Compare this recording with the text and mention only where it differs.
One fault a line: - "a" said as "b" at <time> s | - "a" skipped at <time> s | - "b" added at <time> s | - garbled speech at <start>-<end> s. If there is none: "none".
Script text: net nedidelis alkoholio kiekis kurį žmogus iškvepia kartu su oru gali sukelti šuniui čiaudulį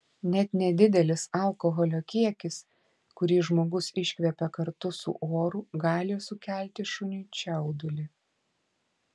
none